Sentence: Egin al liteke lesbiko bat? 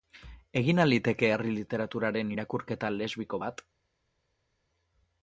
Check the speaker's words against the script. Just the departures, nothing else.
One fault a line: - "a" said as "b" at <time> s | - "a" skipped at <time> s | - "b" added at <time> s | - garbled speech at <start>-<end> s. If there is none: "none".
- "herri literaturaren irakurketa" added at 1.3 s